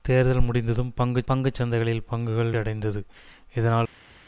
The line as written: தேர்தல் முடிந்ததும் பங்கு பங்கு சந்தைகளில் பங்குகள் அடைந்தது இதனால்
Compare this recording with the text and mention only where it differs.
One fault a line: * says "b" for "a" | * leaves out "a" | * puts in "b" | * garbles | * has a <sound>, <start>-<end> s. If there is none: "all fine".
all fine